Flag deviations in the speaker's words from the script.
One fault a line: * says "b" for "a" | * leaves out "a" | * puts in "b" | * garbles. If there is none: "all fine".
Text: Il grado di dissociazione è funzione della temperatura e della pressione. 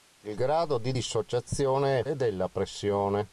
* leaves out "funzione della temperatura"